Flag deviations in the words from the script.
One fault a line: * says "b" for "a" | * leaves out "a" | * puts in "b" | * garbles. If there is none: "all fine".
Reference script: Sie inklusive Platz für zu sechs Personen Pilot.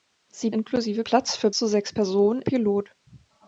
all fine